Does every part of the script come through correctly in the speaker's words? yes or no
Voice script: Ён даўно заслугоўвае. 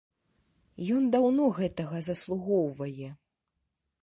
no